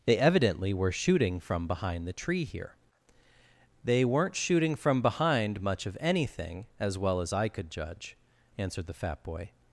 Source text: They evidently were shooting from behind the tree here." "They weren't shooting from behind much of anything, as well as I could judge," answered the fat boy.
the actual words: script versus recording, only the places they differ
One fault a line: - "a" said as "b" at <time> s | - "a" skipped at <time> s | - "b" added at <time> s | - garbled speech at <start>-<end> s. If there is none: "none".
none